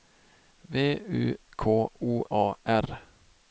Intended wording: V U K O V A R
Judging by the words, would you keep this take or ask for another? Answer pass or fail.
fail